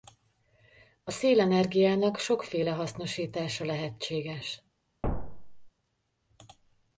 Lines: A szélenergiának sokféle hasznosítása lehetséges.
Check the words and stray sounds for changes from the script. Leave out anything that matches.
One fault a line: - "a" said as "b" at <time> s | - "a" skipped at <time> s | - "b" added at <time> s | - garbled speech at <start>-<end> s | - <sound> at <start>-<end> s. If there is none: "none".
- thud at 5.0-5.7 s